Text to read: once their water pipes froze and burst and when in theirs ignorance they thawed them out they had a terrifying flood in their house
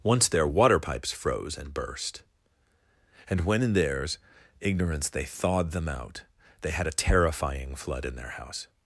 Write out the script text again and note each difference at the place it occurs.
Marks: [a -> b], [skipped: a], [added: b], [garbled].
once their water pipes froze and burst and when in theirs ignorance they thawed them out they had a terrifying flood in their house